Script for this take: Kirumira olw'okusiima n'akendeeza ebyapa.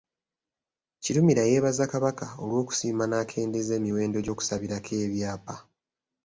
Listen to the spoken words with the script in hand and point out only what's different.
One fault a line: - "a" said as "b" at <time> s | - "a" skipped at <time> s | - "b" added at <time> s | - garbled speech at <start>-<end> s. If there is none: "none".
- "yeebaza Kabaka" added at 1.5 s
- "emiwendo gy'okusabirako" added at 3.8 s